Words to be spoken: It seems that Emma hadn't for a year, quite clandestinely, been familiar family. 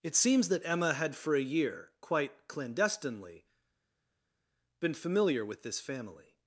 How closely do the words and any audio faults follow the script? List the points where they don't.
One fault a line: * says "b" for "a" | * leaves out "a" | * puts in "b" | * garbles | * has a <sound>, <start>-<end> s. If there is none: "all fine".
* says "had" for "hadn't"
* puts in "with this"